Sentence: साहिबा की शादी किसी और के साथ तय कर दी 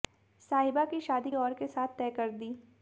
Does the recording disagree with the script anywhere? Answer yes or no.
yes